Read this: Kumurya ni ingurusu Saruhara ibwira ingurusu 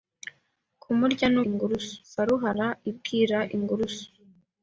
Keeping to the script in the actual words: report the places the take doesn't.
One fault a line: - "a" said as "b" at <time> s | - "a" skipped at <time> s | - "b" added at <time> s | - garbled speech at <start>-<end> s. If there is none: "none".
none